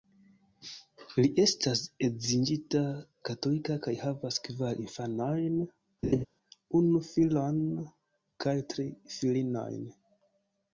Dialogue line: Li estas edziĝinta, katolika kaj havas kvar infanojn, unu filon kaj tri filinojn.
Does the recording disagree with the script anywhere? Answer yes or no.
no